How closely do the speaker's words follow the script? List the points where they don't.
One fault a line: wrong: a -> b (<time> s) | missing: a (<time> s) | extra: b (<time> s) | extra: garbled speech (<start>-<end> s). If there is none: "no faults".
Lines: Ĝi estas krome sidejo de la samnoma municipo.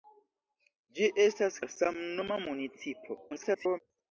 missing: krome sidejo de (1.6 s)
extra: garbled speech (3.3-3.8 s)